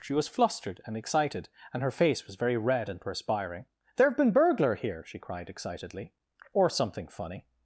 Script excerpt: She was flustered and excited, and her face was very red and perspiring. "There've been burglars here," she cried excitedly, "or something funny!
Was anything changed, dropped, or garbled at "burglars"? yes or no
yes